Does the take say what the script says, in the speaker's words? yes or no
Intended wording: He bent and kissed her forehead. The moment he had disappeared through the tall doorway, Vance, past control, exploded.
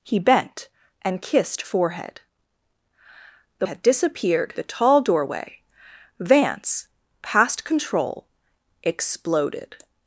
no